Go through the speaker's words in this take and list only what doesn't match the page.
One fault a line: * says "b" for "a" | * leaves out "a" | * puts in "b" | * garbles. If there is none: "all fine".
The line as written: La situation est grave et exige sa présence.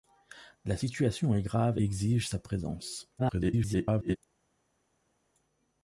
* leaves out "et"
* garbles